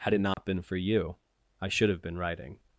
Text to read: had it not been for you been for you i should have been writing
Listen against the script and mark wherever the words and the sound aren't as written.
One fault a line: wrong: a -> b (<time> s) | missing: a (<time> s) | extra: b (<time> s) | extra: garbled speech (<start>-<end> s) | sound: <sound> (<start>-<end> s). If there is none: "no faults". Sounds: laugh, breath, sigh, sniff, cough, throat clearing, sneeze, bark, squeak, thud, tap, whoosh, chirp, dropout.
sound: dropout (0.3-0.4 s)
missing: been for you (1.2 s)